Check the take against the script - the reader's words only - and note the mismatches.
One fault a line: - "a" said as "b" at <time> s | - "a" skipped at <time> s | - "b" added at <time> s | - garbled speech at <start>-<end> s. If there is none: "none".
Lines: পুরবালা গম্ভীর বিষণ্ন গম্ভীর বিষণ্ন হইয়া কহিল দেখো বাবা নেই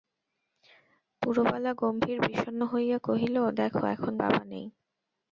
- "গম্ভীর বিষণ্ন" skipped at 2.6 s
- "এখন" added at 3.9 s